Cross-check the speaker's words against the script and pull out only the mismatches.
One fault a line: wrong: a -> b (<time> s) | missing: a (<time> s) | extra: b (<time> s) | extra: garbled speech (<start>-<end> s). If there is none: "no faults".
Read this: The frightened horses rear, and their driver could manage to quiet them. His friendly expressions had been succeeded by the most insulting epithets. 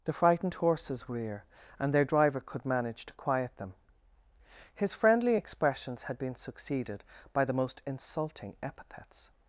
no faults